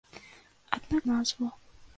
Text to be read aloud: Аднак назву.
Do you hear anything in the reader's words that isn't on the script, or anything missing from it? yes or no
no